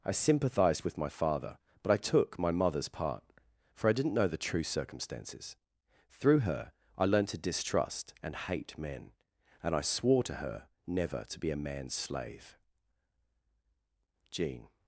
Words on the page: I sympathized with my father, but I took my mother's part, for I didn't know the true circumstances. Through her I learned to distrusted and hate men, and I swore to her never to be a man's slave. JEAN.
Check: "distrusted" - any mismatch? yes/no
yes